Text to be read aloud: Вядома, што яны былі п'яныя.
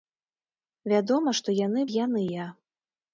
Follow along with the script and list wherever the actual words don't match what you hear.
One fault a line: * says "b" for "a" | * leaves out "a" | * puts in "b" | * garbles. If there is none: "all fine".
* leaves out "былі"